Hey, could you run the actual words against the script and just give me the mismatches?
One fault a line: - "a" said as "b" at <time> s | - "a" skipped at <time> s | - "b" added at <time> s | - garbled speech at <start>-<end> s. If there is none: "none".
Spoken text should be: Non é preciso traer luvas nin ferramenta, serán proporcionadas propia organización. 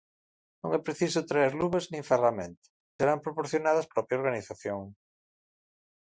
none